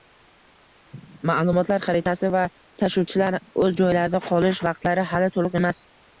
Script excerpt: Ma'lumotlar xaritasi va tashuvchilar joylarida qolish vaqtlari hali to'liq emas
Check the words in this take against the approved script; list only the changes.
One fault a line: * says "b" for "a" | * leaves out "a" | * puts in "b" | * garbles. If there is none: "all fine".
* puts in "o'z"